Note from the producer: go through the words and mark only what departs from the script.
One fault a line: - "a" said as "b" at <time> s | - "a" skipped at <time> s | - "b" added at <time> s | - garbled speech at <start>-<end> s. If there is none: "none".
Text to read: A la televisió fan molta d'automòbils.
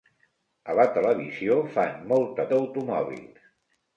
none